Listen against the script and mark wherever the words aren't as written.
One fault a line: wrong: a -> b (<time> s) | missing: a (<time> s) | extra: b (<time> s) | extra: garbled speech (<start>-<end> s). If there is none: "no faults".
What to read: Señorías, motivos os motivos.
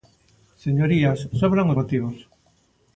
wrong: motivos -> sobran (1.4 s)